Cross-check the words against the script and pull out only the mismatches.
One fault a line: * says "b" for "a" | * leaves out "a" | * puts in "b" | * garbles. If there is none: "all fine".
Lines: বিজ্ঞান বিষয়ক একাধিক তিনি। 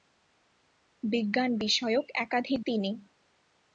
all fine